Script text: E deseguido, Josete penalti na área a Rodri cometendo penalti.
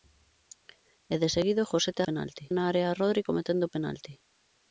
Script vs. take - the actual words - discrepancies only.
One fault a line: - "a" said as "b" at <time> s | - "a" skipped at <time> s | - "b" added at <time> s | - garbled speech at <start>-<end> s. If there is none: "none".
none